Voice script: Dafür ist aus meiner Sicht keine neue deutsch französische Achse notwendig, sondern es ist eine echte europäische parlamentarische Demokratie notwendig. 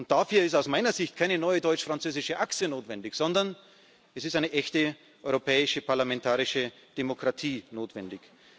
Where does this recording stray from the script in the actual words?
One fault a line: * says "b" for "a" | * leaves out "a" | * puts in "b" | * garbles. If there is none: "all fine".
all fine